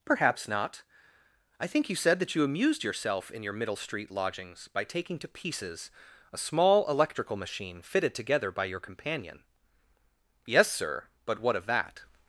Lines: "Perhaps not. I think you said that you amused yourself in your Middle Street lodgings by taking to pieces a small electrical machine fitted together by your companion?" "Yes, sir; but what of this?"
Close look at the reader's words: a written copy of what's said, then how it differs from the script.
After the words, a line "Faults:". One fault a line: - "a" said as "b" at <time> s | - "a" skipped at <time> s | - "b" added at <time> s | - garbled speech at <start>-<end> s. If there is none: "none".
"Perhaps not. I think you said that you amused yourself in your Middle Street lodgings by taking to pieces a small electrical machine fitted together by your companion?" "Yes, sir; but what of that?"
Faults:
- "this" said as "that" at 11.7 s